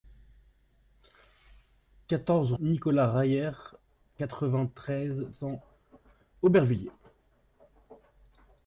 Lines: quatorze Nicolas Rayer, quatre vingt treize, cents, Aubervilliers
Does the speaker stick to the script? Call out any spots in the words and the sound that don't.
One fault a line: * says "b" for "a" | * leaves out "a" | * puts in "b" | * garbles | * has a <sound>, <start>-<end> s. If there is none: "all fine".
all fine